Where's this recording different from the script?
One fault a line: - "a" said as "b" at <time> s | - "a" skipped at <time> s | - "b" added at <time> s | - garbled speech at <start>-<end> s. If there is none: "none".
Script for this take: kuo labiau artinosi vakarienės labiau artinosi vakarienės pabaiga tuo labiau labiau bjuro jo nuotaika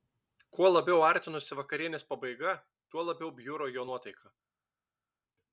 - "labiau artinosi vakarienės" skipped at 2.1 s
- "labiau" skipped at 3.3 s